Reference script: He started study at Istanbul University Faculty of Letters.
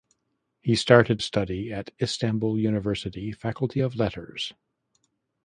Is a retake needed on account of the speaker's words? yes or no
no